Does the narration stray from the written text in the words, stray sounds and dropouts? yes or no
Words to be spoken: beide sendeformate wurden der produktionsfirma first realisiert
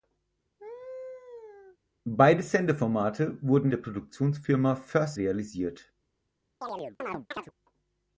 yes